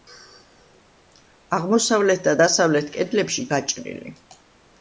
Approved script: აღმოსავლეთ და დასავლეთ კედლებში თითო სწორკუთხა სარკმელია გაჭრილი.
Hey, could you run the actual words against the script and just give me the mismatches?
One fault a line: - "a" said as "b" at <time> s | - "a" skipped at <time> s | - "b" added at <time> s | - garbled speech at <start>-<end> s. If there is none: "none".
- "თითო სწორკუთხა სარკმელია" skipped at 3.5 s